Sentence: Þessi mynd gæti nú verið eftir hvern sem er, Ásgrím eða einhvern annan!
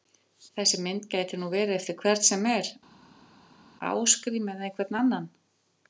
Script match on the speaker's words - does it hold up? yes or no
yes